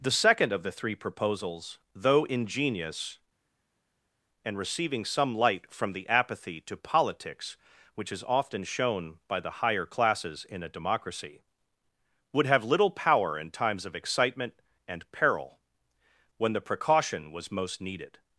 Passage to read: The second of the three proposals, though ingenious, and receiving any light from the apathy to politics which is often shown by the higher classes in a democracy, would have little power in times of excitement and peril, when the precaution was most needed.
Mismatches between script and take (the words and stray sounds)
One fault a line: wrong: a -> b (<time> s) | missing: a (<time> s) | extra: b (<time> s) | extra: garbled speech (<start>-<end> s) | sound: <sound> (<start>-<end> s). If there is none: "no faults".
wrong: any -> some (5.1 s)